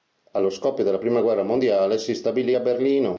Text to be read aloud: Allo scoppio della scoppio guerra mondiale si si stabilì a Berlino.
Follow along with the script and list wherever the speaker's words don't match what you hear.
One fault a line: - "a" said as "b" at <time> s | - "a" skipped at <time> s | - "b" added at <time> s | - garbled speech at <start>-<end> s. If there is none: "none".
- "scoppio" said as "prima" at 1.0 s
- "si" skipped at 2.1 s